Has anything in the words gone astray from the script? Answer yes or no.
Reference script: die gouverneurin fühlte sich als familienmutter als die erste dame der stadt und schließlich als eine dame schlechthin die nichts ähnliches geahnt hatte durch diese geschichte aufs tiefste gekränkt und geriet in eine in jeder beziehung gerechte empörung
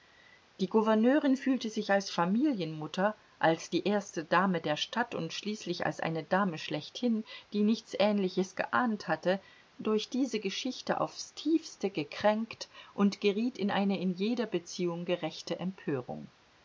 no